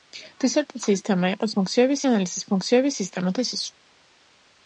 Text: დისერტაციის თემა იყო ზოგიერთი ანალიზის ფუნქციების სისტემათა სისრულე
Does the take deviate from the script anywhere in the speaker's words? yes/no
yes